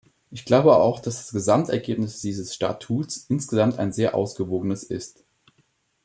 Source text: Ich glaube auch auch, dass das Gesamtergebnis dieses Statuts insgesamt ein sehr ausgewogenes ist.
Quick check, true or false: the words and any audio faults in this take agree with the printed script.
false